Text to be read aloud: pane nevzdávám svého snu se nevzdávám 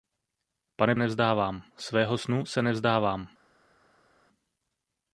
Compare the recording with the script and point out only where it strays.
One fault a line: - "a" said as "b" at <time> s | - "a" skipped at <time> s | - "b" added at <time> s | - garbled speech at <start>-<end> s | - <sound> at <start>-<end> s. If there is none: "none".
none